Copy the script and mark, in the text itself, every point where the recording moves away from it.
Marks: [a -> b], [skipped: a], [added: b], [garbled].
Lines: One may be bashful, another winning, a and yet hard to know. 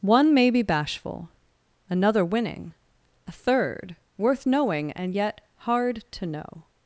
One may be bashful, another winning, a [added: third worth knowing] and yet hard to know.